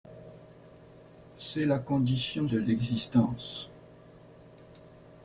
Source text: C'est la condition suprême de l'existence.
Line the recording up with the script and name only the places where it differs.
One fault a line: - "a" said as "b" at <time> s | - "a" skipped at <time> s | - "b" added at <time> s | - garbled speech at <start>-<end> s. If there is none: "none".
- "suprême" skipped at 2.5 s